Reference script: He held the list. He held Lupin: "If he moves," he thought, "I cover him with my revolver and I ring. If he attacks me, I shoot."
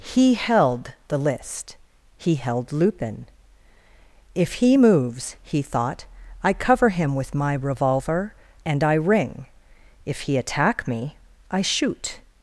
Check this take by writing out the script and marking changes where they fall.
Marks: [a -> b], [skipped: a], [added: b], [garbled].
He held the list. He held Lupin: "If he moves," he thought, "I cover him with my revolver and I ring. If he [attacks -> attack] me, I shoot."